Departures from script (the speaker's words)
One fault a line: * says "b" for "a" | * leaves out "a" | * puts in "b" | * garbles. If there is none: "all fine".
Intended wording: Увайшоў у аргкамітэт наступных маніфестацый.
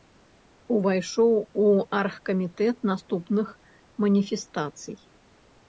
all fine